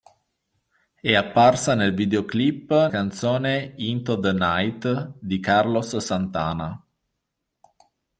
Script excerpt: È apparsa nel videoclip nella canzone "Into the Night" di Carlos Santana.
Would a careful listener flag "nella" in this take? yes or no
yes